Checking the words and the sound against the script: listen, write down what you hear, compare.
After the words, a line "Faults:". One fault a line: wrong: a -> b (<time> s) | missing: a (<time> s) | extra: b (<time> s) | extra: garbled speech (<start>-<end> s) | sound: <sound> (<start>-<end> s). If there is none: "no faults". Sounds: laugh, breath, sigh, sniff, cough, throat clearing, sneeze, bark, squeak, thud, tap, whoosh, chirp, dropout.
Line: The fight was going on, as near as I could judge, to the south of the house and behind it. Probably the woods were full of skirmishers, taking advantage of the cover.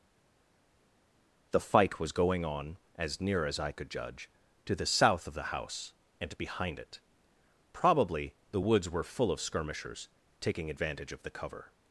The fight was going on, as near as I could judge, to the south of the house and behind it. Probably the woods were full of skirmishers, taking advantage of the cover.
Faults:
no faults